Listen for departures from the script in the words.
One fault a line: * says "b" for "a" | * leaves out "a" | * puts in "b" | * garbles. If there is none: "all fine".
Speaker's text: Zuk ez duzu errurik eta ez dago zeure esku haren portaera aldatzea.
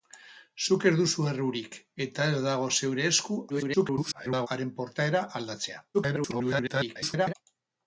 * garbles
* garbles